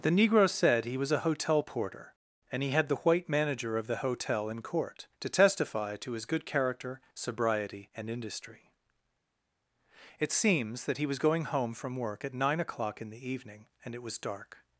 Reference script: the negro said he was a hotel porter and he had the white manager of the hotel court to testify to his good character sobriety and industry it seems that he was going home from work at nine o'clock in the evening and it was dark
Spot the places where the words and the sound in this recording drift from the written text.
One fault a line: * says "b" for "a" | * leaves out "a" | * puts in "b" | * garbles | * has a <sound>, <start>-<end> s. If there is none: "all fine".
* puts in "in"